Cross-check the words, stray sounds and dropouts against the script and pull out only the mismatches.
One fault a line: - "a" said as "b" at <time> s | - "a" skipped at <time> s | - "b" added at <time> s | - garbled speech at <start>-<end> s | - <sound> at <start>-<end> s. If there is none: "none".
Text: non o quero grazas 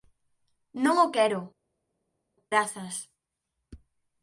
none